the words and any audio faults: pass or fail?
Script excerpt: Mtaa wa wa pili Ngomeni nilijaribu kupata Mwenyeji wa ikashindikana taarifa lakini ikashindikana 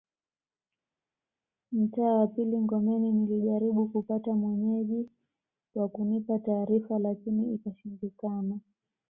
fail